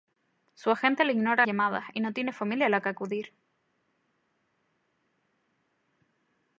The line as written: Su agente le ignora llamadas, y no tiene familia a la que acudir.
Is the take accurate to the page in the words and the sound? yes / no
yes